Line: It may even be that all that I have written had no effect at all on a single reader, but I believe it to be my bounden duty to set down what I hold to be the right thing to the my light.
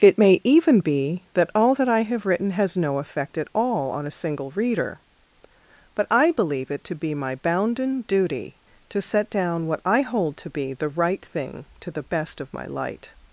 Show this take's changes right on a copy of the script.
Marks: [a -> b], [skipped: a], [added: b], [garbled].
It may even be that all that I have written [had -> has] no effect at all on a single reader, but I believe it to be my bounden duty to set down what I hold to be the right thing to the [added: best of] my light.